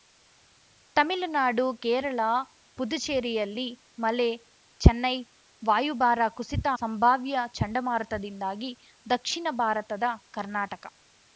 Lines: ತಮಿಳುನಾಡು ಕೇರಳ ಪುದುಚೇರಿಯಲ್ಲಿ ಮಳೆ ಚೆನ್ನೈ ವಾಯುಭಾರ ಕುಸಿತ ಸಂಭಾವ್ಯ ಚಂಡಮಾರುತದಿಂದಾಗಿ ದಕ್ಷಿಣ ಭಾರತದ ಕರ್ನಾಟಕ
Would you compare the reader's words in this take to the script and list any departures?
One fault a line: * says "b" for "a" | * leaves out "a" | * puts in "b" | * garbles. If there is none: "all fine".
all fine